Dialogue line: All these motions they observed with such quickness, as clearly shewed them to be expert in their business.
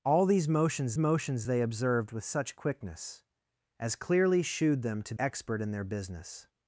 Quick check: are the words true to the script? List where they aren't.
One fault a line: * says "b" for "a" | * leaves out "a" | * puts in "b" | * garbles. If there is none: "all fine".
* puts in "motions"
* leaves out "be"